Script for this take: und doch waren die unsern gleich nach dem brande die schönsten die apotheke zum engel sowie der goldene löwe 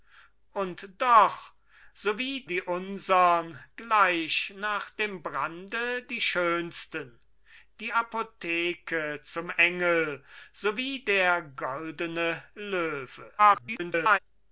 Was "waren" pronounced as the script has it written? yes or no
no